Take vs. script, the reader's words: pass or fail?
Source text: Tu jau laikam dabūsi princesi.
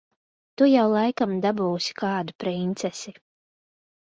fail